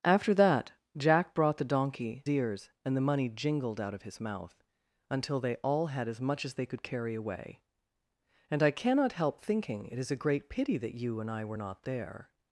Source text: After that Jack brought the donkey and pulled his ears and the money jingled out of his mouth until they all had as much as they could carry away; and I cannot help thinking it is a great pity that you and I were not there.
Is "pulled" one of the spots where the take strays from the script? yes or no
yes